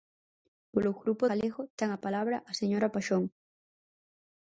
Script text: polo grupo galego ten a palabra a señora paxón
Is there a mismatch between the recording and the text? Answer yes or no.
no